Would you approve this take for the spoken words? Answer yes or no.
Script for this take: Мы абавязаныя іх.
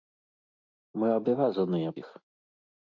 yes